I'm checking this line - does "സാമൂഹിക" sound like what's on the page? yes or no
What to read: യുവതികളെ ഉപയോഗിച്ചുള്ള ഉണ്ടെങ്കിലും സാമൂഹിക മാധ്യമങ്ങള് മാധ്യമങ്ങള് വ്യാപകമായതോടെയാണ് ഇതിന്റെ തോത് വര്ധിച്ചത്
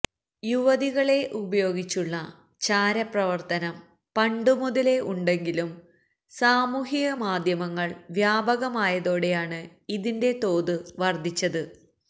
yes